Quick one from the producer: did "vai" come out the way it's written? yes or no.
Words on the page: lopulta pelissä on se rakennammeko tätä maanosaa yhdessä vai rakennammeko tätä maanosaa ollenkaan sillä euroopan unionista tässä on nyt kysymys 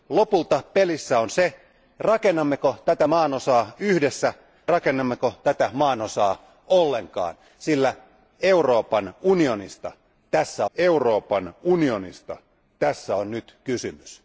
no